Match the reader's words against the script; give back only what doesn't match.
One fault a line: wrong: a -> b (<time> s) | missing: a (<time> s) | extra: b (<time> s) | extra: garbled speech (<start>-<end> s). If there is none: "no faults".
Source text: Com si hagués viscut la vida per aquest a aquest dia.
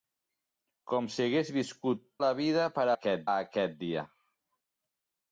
no faults